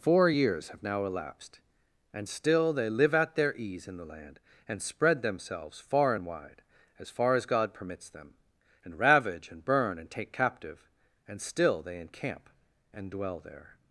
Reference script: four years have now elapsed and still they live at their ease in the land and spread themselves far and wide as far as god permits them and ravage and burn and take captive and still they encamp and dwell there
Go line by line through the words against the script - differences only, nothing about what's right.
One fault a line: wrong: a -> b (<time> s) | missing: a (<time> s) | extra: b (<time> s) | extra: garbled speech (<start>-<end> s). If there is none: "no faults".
no faults